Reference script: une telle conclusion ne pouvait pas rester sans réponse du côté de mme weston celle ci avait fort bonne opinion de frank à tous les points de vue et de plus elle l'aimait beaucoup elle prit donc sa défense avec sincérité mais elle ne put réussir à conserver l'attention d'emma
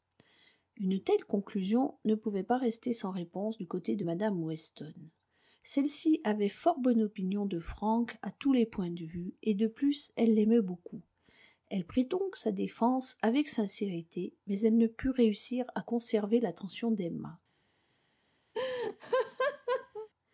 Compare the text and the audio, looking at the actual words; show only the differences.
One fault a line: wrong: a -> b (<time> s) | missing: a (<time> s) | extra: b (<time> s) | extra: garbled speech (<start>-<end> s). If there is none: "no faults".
no faults